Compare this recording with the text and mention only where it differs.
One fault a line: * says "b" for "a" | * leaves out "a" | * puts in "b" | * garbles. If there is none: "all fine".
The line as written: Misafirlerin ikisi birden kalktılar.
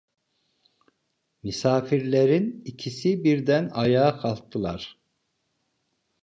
* puts in "ayağa"